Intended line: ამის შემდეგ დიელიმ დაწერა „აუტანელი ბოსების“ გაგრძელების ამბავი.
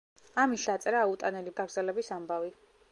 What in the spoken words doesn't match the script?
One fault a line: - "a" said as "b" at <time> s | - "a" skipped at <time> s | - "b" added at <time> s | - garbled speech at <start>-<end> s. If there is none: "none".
- "შემდეგ დიელიმ" skipped at 0.6 s
- "ბოსების" skipped at 1.6 s